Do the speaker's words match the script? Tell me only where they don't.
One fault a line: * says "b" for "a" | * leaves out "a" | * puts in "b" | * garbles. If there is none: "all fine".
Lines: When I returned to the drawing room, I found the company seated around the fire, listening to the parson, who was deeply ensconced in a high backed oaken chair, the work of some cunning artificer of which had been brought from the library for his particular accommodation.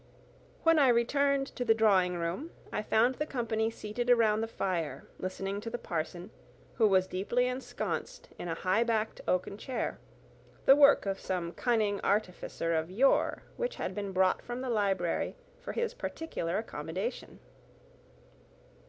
* puts in "yore"